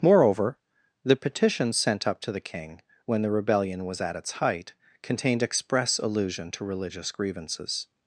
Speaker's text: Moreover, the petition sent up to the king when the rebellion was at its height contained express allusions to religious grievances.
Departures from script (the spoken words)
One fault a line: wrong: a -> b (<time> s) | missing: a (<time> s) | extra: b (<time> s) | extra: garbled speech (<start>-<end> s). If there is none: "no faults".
wrong: allusions -> allusion (6.0 s)